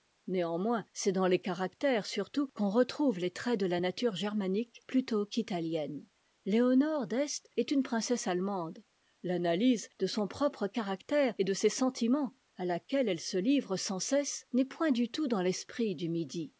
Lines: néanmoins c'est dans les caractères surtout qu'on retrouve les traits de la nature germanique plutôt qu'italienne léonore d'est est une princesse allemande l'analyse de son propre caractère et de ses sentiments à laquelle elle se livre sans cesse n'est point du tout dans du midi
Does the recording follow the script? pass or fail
fail